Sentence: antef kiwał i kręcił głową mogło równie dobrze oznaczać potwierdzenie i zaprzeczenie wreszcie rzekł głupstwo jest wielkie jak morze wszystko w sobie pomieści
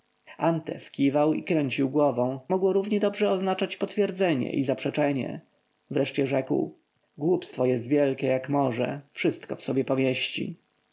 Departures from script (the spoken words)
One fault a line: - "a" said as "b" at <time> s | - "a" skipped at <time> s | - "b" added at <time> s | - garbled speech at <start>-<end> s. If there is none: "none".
none